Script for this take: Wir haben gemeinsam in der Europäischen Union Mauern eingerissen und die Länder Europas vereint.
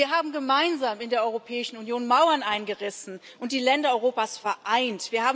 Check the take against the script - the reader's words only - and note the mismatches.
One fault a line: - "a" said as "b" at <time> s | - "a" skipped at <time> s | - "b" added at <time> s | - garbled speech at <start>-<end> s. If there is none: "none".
none